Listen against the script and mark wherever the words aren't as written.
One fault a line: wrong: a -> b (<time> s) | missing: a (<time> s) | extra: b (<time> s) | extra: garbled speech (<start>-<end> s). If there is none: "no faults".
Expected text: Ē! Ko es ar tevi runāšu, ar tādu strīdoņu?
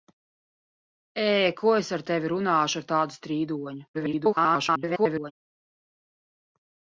extra: garbled speech (3.9-5.3 s)